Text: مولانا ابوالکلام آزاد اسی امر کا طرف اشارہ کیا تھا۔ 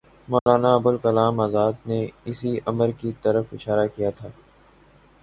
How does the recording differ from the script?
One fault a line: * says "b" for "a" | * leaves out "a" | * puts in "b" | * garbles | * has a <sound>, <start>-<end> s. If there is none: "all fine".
* has a dropout, 0.4-0.5 s
* puts in "نے"
* says "کی" for "کا"